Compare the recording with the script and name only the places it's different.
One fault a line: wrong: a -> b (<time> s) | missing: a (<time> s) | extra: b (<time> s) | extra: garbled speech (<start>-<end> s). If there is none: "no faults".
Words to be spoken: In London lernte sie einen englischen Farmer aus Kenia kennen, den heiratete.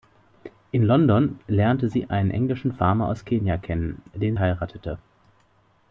no faults